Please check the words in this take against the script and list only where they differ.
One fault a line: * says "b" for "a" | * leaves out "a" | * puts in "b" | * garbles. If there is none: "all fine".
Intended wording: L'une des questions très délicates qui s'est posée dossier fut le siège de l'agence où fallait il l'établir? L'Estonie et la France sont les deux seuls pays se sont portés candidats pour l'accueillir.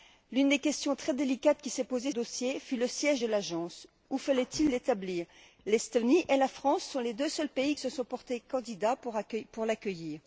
all fine